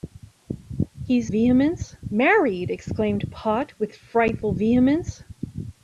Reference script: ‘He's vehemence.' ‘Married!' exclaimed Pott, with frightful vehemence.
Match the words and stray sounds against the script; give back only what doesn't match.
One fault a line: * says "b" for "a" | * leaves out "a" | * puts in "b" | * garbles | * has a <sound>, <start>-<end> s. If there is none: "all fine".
all fine